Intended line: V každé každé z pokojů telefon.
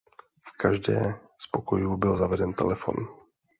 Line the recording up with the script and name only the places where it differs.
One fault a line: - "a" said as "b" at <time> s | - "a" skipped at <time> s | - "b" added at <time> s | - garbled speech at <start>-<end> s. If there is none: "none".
- "každé" skipped at 1.1 s
- "byl zaveden" added at 2.0 s